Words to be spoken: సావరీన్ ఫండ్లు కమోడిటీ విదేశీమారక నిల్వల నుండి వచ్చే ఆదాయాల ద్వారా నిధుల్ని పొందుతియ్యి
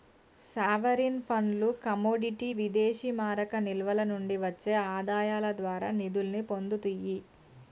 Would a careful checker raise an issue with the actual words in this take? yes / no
no